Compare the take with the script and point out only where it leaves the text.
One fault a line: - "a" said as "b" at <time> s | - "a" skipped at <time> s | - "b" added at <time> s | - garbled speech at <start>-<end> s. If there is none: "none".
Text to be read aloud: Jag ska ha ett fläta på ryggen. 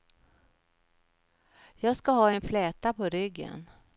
- "ett" said as "en" at 2.3 s